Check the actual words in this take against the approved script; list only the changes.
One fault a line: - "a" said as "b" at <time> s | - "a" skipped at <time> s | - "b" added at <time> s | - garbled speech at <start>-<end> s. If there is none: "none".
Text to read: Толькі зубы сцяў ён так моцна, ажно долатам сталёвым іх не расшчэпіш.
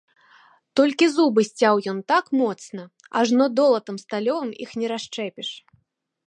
none